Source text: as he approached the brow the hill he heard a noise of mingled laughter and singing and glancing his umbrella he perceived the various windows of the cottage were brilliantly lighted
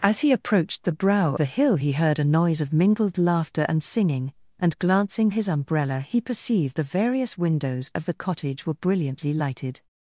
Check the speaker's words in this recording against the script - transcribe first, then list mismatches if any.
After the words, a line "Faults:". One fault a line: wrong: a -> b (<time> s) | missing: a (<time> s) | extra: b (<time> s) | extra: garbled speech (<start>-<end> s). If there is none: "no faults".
as he approached the brow the hill he heard a noise of mingled laughter and singing and glancing his umbrella he perceived the various windows of the cottage were brilliantly lighted
Faults:
no faults